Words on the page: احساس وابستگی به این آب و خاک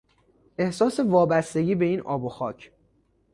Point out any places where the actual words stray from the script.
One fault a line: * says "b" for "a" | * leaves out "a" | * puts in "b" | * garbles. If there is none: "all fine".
all fine